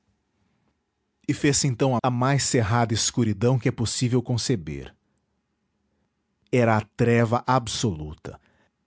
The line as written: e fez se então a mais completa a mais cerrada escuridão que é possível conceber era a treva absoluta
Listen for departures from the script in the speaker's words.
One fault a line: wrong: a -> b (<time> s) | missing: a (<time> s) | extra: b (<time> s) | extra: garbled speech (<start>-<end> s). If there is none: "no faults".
missing: mais completa (2.0 s)